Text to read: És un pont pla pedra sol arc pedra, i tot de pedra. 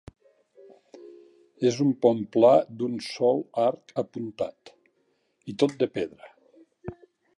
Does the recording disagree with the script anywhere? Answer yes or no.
yes